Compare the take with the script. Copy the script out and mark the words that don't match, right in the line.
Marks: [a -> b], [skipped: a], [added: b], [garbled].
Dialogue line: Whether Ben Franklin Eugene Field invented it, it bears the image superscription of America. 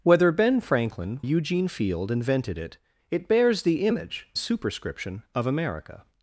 Whether Ben Franklin Eugene Field invented it, it bears the image superscription of America.